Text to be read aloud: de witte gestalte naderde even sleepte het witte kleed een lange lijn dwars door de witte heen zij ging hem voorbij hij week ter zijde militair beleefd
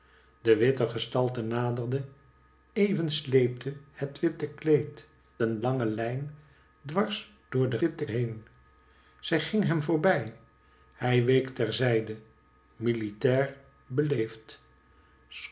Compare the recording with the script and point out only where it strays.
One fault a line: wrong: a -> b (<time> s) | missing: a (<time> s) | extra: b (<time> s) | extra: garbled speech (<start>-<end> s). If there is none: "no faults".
no faults